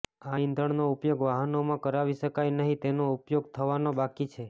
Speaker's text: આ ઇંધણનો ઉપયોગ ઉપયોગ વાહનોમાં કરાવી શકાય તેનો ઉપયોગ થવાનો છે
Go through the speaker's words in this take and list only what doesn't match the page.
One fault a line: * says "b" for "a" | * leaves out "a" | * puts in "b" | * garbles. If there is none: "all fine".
* leaves out "ઉપયોગ"
* puts in "નહીં"
* puts in "બાકી"